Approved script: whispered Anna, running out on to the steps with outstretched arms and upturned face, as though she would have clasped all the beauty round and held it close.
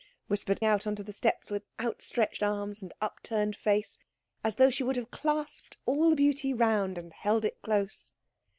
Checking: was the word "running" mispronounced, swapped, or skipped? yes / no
yes